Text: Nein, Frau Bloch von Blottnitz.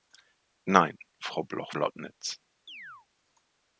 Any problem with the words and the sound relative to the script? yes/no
yes